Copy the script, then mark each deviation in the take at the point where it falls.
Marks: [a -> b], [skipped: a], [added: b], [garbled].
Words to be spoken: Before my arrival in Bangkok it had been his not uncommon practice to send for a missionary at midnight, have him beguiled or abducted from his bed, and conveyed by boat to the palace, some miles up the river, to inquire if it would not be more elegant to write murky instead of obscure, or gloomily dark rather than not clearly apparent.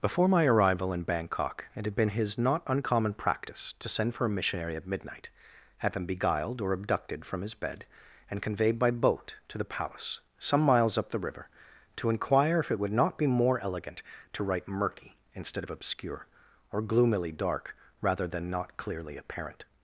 Before my arrival in Bangkok it had been his not uncommon practice to send for a missionary at midnight, have him beguiled or abducted from his bed, and conveyed by boat to the palace, some miles up the river, to inquire if it would not be more elegant to write murky instead of obscure, or gloomily dark rather than not clearly apparent.